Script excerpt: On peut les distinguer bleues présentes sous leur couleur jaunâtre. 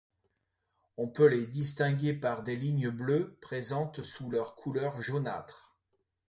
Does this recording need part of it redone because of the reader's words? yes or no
yes